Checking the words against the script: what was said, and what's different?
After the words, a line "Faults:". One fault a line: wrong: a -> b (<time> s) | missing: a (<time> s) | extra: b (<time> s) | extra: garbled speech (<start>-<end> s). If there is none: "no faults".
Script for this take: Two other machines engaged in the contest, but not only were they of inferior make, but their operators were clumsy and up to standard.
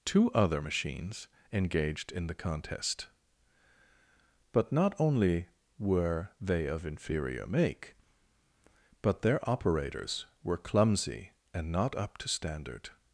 Two other machines engaged in the contest, but not only were they of inferior make, but their operators were clumsy and not up to standard.
Faults:
extra: not (11.7 s)